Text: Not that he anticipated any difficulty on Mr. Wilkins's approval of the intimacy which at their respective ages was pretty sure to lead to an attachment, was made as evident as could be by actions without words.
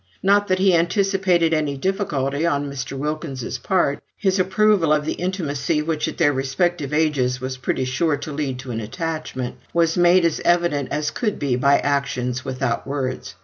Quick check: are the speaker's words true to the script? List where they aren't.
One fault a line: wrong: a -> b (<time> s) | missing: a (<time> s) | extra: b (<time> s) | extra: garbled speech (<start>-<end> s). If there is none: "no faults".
extra: part his (3.6 s)